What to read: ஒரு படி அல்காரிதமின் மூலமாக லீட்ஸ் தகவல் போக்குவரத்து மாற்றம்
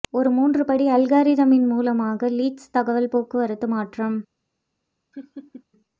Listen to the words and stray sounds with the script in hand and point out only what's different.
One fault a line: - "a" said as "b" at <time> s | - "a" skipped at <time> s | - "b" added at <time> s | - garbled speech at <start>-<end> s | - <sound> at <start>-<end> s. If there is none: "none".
- "மூன்று" added at 0.3 s
- laugh at 5.1-5.6 s